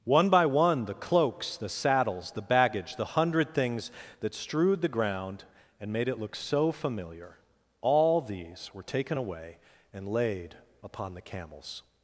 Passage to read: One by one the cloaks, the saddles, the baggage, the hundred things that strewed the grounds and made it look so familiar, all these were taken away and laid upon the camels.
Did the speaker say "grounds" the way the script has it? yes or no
no